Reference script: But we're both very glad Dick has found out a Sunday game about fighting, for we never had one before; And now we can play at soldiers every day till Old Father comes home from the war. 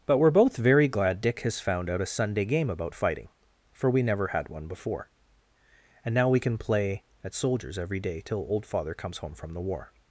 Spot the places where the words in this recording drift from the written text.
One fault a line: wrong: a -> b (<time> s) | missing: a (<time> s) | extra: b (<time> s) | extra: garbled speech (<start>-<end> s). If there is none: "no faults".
no faults